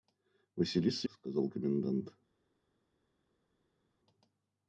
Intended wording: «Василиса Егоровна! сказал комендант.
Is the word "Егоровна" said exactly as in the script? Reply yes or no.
no